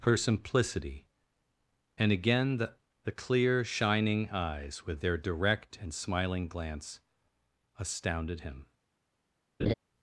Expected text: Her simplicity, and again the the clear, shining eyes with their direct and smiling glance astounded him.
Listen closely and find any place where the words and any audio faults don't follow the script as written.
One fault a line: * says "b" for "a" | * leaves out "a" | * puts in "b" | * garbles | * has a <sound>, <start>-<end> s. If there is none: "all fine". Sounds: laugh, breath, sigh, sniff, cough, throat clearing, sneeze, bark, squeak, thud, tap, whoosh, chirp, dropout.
* has a laugh, 9.6-9.7 s